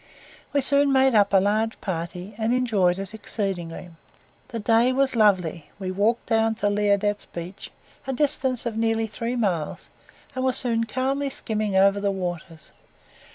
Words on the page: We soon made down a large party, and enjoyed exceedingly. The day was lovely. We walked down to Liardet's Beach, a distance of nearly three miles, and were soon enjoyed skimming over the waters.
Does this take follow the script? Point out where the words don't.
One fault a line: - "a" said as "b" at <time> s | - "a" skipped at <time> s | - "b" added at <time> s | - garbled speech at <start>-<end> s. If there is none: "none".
- "down" said as "up" at 1.1 s
- "it" added at 3.0 s
- "enjoyed" said as "calmly" at 10.8 s